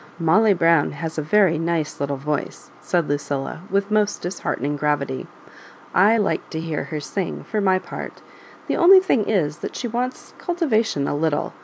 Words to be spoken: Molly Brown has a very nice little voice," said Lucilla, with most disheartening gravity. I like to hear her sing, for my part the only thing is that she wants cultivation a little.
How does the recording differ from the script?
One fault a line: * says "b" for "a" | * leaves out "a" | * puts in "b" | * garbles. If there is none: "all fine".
all fine